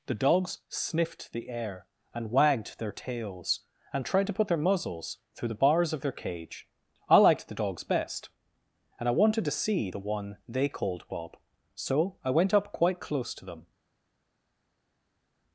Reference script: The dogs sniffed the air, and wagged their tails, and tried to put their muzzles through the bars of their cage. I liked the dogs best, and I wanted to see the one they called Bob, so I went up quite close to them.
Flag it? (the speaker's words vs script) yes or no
no